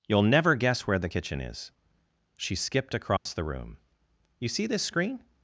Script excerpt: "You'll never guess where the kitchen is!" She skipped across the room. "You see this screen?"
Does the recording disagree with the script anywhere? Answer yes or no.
no